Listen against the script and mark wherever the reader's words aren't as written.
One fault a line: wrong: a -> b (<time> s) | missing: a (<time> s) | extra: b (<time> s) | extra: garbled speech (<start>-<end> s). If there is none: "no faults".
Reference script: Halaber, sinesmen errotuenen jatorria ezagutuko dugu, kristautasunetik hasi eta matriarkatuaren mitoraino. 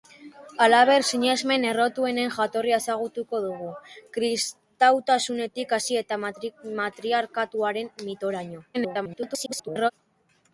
extra: garbled speech (8.7-9.9 s)